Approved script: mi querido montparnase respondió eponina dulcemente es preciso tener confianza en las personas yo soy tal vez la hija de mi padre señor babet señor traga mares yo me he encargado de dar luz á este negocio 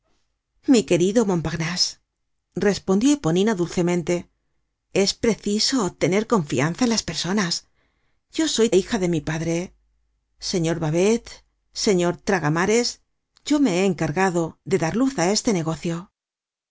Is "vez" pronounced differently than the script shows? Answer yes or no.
yes